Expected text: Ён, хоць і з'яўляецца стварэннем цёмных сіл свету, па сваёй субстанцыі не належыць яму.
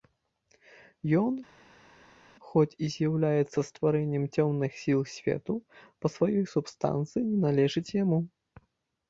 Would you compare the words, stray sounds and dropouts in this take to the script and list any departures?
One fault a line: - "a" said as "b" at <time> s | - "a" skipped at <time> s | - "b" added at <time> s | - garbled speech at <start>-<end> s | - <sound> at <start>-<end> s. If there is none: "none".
none